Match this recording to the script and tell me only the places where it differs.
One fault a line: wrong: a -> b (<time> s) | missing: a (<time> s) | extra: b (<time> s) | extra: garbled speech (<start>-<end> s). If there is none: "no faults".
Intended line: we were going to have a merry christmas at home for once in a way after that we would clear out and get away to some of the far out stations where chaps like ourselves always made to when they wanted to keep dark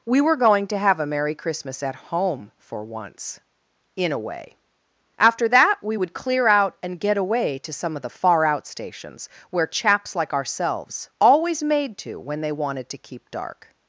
no faults